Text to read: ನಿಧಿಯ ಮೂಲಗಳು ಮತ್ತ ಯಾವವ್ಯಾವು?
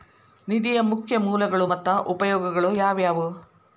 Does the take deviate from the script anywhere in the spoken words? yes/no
yes